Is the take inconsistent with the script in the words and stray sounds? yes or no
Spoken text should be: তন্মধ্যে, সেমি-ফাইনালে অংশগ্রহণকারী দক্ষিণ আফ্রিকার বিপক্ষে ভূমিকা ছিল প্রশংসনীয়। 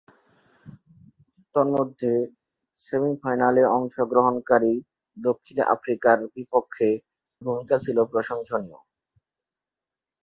no